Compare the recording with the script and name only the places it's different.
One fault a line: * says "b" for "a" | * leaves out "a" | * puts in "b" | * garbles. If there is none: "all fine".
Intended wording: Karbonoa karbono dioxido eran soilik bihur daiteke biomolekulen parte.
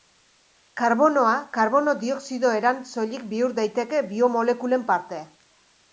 all fine